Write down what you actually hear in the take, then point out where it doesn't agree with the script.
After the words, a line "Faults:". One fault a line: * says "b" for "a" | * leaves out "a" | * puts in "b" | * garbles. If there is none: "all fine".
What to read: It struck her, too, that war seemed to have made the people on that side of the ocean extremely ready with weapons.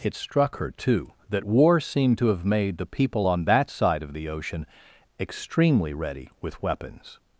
It struck her, too, that war seemed to have made the people on that side of the ocean extremely ready with weapons.
Faults:
all fine